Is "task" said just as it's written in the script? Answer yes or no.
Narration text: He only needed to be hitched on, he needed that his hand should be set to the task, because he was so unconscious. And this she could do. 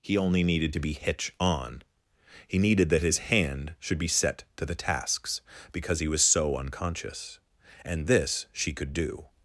no